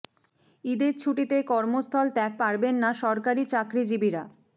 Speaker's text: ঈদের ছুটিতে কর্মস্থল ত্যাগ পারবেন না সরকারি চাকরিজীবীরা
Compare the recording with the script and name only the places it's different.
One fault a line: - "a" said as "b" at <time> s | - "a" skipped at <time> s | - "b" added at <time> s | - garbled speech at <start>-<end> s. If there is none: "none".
none